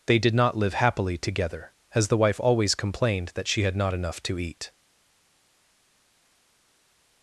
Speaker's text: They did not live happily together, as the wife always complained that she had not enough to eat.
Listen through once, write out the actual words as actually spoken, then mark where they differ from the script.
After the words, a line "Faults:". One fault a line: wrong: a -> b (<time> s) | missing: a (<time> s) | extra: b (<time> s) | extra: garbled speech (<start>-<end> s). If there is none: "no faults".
They did not live happily together, as the wife always complained that she had not enough to eat.
Faults:
no faults